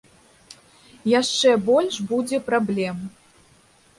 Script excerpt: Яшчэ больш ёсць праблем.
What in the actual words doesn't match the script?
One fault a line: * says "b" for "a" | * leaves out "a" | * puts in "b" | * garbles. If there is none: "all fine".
* says "будзе" for "ёсць"